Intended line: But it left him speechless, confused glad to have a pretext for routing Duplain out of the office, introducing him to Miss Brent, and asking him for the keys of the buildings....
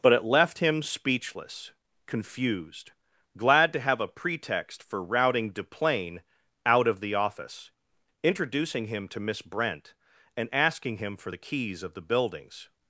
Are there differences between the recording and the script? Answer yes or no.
no